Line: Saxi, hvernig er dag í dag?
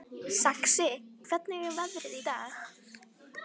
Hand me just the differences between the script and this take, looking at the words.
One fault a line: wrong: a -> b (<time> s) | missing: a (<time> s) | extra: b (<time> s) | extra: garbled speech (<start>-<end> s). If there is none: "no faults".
wrong: dag -> veðrið (1.8 s)